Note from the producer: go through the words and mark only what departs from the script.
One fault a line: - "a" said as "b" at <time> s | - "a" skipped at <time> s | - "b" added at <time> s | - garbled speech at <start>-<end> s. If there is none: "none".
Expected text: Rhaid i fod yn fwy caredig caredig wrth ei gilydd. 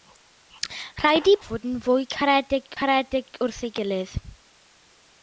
none